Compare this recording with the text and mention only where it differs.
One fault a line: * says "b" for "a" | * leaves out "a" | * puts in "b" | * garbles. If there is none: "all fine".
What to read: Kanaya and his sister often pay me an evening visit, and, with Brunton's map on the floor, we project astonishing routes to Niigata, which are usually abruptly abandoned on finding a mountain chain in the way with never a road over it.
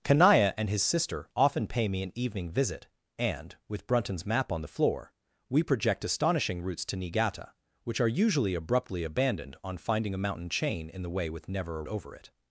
* leaves out "road"